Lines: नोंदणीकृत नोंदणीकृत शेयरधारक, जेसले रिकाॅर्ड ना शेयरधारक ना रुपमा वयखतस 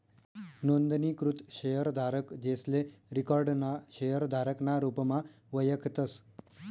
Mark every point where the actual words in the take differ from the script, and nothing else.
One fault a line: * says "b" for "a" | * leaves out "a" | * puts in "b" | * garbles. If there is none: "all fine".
* leaves out "नोंदणीकृत"